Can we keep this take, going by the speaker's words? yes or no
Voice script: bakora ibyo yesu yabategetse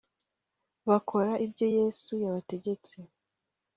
yes